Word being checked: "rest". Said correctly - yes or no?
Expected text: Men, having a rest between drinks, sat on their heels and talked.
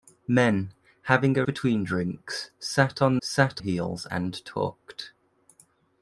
no